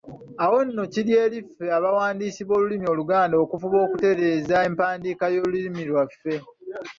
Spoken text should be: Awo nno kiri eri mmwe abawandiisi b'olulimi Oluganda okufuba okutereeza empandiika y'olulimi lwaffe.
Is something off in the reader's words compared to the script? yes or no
yes